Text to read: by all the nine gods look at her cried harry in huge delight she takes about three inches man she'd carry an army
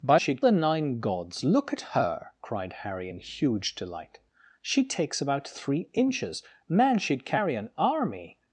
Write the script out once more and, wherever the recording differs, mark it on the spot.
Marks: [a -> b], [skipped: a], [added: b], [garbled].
by [all -> she'd] the nine gods look at her cried harry in huge delight she takes about three inches man she'd carry an army